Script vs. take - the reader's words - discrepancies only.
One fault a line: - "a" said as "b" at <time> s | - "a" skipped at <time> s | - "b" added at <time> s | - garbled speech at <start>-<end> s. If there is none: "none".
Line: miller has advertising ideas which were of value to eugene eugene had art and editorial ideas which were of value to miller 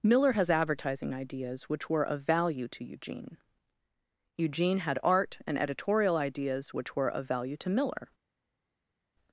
none